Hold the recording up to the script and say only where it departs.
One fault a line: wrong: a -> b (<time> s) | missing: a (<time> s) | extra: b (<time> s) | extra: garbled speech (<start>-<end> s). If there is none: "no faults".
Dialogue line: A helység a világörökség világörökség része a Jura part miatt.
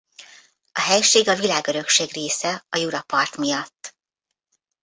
missing: világörökség (2.1 s)